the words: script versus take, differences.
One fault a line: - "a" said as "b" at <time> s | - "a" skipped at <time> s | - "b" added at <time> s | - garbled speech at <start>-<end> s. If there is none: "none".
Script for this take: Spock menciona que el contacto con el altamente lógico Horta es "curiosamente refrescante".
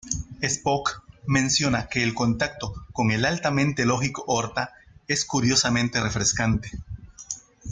none